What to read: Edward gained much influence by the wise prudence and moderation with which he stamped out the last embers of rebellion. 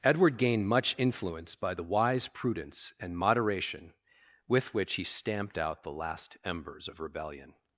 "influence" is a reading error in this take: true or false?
false